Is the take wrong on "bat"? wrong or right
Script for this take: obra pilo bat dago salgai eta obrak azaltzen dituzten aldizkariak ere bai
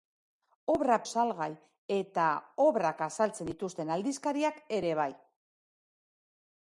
wrong